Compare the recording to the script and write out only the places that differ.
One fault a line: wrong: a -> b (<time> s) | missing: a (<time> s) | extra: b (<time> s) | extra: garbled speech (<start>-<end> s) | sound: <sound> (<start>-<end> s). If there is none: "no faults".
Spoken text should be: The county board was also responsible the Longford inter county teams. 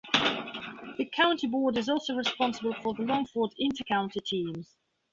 wrong: was -> is (1.8 s)
extra: for (2.8 s)